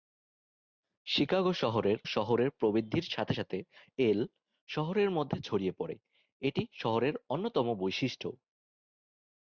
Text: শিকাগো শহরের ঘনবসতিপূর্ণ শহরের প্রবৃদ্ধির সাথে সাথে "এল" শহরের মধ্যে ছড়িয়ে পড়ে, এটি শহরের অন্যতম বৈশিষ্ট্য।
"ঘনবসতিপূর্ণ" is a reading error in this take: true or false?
true